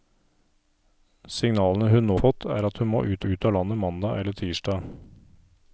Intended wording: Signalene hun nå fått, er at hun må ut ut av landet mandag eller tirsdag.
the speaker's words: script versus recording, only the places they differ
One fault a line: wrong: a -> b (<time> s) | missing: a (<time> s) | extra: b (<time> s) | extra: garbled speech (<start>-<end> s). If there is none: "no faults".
no faults